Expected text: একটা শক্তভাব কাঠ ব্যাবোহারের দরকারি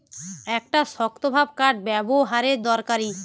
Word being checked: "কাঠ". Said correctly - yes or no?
yes